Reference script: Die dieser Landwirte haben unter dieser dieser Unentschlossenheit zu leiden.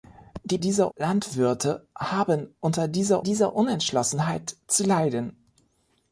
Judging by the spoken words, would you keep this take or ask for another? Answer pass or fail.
pass